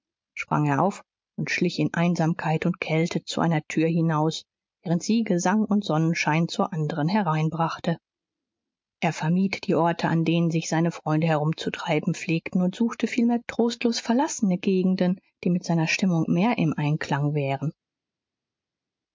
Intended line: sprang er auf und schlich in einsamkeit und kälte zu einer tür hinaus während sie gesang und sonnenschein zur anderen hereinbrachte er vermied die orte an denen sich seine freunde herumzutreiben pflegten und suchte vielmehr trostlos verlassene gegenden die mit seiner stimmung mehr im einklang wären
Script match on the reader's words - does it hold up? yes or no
yes